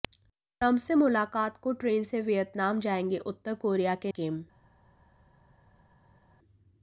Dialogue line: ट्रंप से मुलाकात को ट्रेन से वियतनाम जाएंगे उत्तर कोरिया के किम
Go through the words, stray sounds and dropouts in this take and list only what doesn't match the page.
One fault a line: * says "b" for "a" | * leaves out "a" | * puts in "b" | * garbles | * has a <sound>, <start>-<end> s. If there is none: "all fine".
all fine